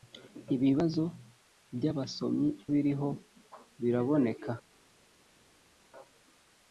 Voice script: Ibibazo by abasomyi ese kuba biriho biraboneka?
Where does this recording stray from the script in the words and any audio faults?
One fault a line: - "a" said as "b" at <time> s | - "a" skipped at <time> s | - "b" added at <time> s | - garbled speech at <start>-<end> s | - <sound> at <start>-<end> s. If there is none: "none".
- "ese kuba" skipped at 2.5 s